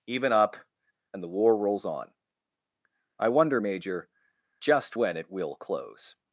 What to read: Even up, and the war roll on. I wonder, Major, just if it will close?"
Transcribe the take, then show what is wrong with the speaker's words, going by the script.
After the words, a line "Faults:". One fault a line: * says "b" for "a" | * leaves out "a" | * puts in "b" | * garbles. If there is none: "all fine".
Even up, and the war rolls on. I wonder, Major, just when it will close?"
Faults:
* says "rolls" for "roll"
* says "when" for "if"